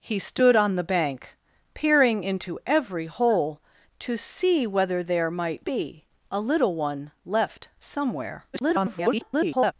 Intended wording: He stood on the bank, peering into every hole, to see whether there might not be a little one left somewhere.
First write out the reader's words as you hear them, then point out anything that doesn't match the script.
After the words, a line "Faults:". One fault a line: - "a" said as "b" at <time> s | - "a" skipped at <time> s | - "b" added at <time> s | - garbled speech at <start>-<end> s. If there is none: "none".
He stood on the bank, peering into every hole, to see whether there might be a little one left somewhere. [garbled]
Faults:
- "not" skipped at 5.7 s
- garbled speech at 8.5-9.7 s